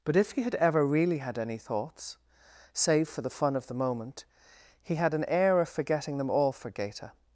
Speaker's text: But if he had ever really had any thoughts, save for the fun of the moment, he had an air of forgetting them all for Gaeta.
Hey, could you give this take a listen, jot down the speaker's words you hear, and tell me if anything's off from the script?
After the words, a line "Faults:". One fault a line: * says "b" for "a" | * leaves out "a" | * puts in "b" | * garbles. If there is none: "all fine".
But if he had ever really had any thoughts, save for the fun of the moment, he had an air of forgetting them all for Gaeta.
Faults:
all fine